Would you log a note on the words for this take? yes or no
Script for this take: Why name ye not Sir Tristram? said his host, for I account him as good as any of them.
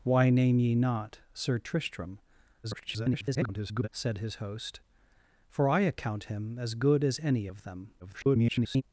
yes